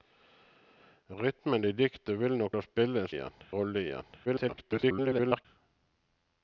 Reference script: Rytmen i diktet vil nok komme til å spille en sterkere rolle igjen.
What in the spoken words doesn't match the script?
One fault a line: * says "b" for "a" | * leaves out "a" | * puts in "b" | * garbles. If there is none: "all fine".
* leaves out "komme til"
* says "igjen" for "sterkere"
* garbles